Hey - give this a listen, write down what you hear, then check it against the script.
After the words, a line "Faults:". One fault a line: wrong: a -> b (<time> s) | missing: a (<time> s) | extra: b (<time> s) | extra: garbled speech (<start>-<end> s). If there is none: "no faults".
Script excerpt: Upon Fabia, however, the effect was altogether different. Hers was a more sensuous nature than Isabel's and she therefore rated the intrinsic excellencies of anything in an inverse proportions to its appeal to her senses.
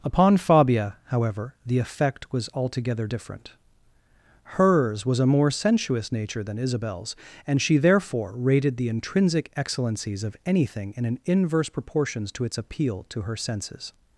Upon Fabia, however, the effect was altogether different. Hers was a more sensuous nature than Isabel's and she therefore rated the intrinsic excellencies of anything in an inverse proportions to its appeal to her senses.
Faults:
no faults